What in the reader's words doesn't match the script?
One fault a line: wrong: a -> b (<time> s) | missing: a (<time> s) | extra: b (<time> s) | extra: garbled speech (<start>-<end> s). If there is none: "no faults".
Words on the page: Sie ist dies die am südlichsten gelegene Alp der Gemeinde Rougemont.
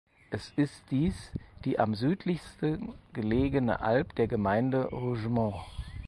wrong: Sie -> Es (0.3 s)